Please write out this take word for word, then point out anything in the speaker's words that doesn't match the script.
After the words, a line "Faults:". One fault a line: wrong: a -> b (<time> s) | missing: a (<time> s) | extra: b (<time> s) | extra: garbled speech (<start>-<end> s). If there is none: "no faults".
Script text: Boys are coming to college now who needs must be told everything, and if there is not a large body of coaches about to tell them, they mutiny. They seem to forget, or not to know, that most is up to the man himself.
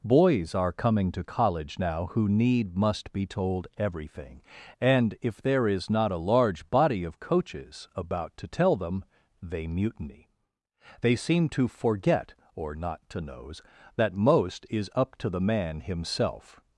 Boys are coming to college now who need must be told everything, and if there is not a large body of coaches about to tell them, they mutiny. They seem to forget, or not to knows, that most is up to the man himself.
Faults:
wrong: needs -> need (2.3 s)
wrong: know -> knows (13.2 s)